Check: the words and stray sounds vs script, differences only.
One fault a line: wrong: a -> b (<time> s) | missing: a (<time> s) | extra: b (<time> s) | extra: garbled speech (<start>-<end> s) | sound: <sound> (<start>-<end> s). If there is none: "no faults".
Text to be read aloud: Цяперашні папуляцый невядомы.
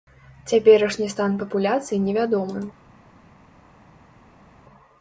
extra: стан (1.1 s)